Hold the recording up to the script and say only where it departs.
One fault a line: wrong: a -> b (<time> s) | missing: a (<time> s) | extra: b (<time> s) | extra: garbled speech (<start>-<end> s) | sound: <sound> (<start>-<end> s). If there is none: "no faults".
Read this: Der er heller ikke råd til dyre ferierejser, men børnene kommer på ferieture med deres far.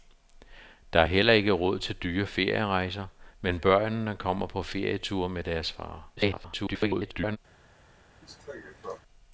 extra: garbled speech (6.2-7.4 s)
sound: cough (8.2-9.0 s)